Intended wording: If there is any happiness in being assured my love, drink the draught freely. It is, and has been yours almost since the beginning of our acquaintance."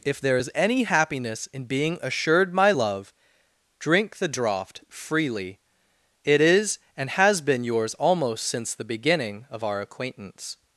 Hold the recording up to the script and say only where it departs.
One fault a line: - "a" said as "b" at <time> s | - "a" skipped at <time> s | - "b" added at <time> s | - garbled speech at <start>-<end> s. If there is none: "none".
none